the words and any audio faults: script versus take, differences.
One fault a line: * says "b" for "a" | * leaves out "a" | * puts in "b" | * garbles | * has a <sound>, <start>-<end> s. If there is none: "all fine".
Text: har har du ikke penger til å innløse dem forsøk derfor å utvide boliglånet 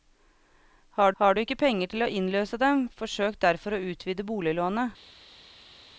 all fine